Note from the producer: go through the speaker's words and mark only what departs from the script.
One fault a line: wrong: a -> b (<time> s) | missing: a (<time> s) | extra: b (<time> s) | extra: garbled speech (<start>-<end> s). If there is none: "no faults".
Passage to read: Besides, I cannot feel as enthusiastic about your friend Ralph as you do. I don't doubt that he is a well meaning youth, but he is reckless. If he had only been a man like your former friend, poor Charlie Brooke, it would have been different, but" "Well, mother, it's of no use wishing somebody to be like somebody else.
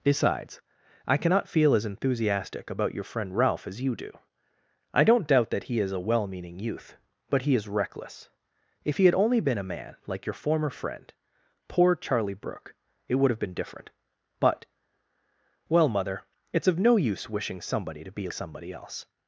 missing: like (18.3 s)